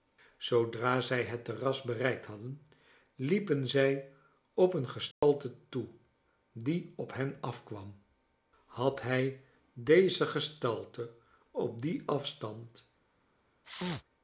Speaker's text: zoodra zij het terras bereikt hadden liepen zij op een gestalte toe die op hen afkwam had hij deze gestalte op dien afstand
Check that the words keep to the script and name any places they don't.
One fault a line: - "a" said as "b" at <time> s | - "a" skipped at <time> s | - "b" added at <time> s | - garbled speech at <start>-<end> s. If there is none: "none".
none